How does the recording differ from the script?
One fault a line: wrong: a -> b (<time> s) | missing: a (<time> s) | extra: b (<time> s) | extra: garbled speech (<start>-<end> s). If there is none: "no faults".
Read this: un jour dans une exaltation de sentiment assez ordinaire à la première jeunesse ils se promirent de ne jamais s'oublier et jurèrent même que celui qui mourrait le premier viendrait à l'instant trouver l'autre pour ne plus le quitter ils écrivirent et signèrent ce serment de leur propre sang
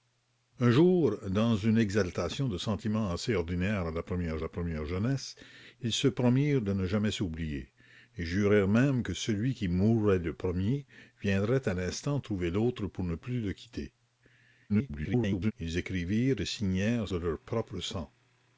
extra: la première (4.4 s)
extra: garbled speech (14.7-15.5 s)
missing: ce serment (17.1 s)